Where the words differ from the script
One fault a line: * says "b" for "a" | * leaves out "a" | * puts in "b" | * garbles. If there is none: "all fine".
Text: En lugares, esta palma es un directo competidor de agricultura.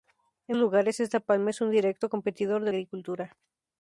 all fine